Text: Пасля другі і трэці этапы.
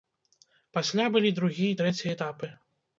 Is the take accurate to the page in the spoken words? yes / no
no